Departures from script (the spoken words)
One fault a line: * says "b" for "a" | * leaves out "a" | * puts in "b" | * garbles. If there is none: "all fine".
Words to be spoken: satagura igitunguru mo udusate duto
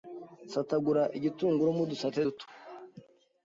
all fine